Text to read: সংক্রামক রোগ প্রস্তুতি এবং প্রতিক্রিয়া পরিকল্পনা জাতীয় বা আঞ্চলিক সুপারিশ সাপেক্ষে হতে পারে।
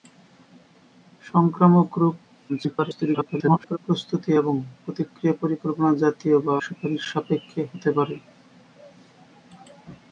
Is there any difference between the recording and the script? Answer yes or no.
yes